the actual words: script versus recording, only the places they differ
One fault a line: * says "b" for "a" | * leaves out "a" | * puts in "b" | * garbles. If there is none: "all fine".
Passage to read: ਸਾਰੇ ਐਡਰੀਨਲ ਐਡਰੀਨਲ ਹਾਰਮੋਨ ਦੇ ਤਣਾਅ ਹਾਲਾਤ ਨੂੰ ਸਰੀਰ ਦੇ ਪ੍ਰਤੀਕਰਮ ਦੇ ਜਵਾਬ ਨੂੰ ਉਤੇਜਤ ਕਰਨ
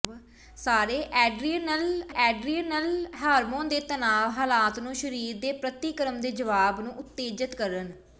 all fine